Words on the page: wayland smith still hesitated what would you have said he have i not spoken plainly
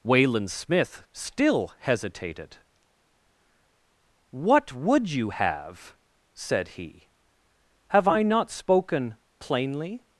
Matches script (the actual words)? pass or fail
pass